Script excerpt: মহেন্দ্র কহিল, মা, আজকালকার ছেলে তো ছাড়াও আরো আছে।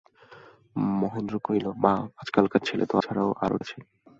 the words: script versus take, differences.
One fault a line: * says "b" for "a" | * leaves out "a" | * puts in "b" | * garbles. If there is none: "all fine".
all fine